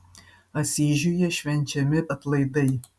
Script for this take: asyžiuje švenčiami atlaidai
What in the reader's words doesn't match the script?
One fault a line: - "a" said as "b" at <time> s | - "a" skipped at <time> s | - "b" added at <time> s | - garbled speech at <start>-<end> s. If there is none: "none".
none